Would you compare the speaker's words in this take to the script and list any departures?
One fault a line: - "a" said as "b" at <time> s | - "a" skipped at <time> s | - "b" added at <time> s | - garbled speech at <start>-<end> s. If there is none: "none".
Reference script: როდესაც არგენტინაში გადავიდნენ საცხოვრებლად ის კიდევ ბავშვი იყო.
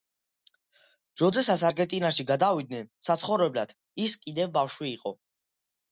none